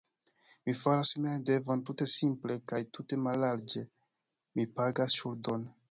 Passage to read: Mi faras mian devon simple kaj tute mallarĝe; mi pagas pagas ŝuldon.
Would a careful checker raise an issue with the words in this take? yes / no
yes